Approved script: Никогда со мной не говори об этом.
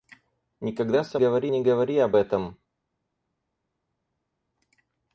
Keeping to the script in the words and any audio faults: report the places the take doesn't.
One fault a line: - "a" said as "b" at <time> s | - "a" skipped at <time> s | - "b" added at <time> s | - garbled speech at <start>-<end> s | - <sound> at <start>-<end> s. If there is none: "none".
- "мной" said as "говори" at 1.2 s